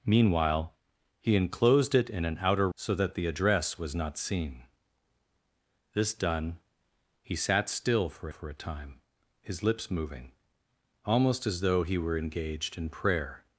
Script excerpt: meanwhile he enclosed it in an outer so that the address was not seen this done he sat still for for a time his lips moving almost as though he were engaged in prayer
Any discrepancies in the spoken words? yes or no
no